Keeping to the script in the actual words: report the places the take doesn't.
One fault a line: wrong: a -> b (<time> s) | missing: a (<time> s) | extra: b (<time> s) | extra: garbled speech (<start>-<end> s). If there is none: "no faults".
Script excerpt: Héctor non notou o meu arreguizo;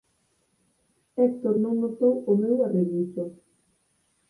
no faults